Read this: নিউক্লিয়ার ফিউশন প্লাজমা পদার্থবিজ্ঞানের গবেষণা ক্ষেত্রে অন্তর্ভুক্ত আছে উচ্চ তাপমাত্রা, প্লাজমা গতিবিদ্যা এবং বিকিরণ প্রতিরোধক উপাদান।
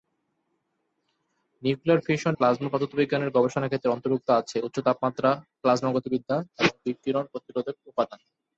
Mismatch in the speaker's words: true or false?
false